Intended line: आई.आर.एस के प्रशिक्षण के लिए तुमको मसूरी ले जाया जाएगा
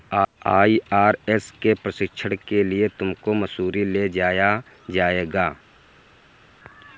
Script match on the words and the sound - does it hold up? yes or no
yes